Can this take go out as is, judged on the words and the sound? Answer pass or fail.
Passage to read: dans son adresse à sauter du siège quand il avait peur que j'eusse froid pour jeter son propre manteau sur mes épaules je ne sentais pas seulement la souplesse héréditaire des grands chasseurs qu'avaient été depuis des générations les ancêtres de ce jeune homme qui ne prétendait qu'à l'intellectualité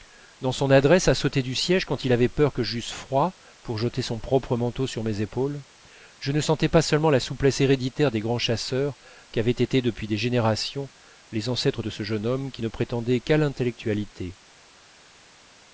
pass